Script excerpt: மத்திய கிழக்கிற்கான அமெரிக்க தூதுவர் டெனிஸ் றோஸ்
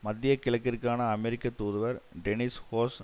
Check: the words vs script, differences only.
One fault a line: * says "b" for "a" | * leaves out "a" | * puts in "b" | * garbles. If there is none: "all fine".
all fine